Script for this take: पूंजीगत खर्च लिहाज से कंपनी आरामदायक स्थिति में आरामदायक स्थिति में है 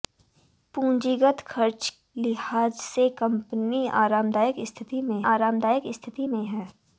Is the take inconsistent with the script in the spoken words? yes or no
no